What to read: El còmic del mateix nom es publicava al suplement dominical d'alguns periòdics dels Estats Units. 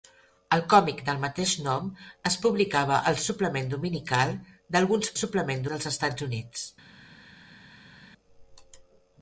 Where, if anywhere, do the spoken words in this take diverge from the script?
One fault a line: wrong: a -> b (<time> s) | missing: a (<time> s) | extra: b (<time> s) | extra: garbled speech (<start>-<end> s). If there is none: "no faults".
wrong: periòdics -> suplement (5.2 s)